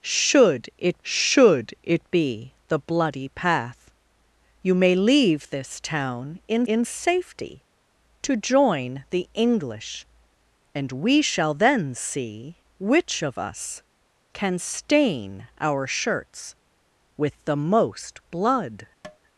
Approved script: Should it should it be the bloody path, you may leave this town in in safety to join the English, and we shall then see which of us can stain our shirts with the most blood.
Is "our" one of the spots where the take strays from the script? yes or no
no